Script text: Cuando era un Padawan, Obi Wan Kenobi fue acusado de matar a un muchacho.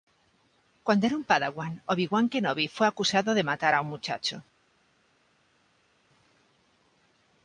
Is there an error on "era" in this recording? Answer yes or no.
no